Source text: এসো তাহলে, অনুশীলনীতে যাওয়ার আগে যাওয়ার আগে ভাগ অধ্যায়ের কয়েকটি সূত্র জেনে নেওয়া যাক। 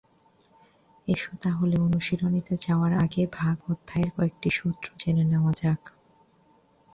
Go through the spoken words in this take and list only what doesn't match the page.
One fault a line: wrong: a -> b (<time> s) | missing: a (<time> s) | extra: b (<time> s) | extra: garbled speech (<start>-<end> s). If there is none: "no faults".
missing: যাওয়ার আগে (3.2 s)